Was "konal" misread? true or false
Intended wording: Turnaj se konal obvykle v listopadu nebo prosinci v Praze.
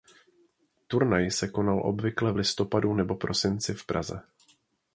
false